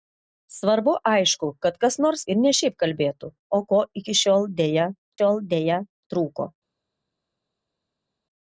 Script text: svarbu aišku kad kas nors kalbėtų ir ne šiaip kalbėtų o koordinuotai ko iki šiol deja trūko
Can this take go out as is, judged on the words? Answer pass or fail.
fail